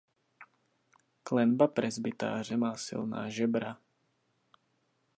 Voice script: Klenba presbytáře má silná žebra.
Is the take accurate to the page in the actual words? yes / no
yes